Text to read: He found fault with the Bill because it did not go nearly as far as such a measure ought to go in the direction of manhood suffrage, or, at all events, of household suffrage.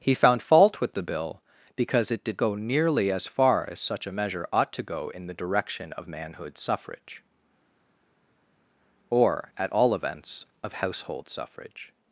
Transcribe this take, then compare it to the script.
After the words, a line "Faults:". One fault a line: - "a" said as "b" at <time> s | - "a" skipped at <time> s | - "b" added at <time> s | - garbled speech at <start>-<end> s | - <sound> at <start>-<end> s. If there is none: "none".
He found fault with the Bill because it did go nearly as far as such a measure ought to go in the direction of manhood suffrage, or, at all events, of household suffrage.
Faults:
- "not" skipped at 2.4 s